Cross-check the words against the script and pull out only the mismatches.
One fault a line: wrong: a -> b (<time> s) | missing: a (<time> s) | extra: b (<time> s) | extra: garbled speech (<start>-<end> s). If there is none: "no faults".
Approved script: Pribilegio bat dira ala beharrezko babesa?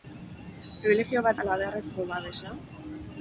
missing: dira (1.4 s)